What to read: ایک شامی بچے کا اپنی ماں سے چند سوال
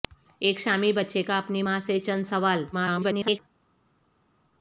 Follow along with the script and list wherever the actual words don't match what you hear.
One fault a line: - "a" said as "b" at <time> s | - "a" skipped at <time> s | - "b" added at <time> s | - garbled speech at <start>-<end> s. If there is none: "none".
- garbled speech at 2.7-3.4 s